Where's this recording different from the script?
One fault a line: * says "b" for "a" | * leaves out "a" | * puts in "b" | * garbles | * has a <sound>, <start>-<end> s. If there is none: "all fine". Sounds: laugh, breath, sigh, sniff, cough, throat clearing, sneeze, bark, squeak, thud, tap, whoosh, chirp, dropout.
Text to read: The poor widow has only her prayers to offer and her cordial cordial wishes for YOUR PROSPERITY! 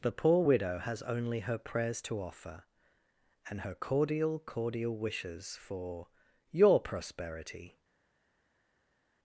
all fine